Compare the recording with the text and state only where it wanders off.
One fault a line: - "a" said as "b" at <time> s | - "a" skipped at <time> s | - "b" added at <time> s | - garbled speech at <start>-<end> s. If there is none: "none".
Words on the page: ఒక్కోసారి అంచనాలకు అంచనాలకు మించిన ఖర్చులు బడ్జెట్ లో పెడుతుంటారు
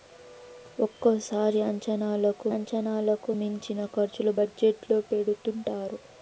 none